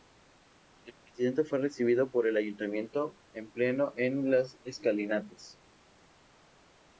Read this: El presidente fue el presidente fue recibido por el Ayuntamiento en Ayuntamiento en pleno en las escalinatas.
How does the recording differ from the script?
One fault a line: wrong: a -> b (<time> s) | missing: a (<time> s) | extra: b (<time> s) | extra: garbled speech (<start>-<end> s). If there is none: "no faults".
missing: el presidente fue (1.6 s)
missing: Ayuntamiento en (3.5 s)